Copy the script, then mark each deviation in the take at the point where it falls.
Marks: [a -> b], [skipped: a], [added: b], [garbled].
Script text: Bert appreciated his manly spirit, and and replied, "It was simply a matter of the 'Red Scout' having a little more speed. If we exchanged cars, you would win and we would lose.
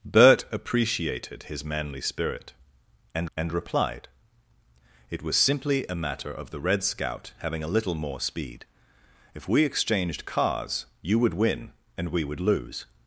Bert appreciated his manly spirit, and and replied, "It was simply a matter of the 'Red Scout' having a little more speed. If we exchanged cars, you would win and we would lose.